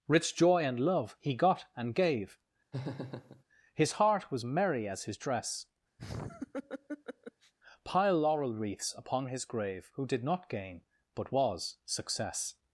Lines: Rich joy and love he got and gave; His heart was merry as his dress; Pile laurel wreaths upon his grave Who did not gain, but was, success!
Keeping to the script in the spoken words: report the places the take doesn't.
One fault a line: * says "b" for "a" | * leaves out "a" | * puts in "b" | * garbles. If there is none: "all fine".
all fine